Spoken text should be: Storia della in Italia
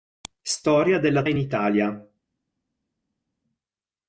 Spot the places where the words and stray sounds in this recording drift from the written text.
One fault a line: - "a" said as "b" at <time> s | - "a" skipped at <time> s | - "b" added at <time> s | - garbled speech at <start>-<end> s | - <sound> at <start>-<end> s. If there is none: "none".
none